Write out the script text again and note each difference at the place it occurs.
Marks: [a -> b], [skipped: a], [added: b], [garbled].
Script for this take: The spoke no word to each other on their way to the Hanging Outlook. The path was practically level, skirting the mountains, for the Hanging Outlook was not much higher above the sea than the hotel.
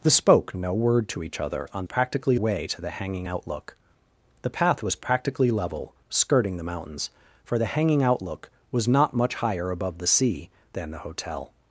The spoke no word to each other on [their -> practically] way to the Hanging Outlook. The path was practically level, skirting the mountains, for the Hanging Outlook was not much higher above the sea than the hotel.